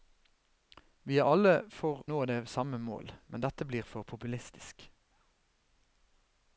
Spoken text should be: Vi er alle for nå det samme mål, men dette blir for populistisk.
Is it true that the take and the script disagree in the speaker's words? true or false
false